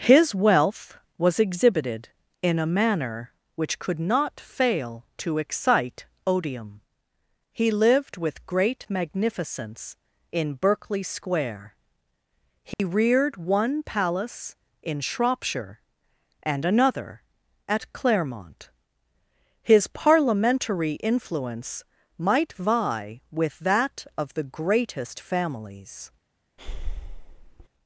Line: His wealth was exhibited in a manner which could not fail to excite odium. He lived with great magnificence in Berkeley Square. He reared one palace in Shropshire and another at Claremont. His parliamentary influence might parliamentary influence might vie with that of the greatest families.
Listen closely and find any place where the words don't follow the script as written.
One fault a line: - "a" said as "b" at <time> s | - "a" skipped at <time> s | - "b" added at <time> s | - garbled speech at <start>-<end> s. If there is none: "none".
- "parliamentary influence might" skipped at 22.5 s